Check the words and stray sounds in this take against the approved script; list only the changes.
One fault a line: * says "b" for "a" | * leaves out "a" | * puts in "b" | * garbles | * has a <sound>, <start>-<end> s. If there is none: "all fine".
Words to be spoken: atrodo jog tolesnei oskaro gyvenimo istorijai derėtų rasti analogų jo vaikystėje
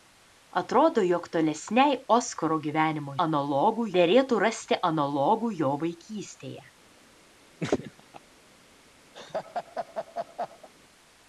* says "analogų" for "istorijai"
* has a laugh, 7.6-8.2 s
* has a laugh, 9.1-10.7 s